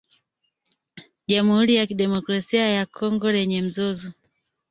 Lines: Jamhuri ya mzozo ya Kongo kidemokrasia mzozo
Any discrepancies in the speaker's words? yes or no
yes